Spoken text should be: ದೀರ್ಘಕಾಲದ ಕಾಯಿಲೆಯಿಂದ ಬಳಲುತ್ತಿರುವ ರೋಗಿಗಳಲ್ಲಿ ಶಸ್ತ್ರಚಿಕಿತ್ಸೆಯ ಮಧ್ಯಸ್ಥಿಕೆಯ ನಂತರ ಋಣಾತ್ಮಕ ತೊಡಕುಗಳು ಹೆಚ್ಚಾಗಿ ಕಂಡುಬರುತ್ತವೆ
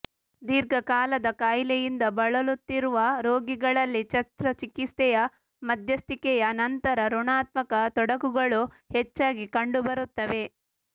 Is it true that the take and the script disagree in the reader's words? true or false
false